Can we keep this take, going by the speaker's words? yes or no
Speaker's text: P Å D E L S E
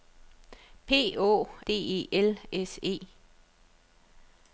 yes